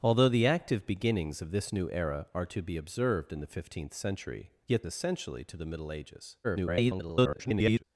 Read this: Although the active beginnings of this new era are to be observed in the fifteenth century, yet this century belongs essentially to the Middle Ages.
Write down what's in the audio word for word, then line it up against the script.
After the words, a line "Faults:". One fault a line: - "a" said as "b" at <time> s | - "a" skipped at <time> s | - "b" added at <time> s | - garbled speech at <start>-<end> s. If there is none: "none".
Although the active beginnings of this new era are to be observed in the fifteenth century, yet essentially to the Middle Ages. [garbled]
Faults:
- "this century belongs" skipped at 4.8 s
- garbled speech at 6.4-7.8 s